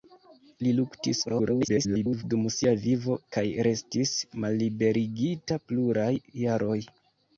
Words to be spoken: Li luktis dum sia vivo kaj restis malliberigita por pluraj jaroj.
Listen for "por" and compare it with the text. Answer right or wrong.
wrong